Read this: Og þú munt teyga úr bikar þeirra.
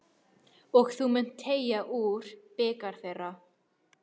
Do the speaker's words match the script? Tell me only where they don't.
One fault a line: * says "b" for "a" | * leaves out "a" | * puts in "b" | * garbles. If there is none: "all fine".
all fine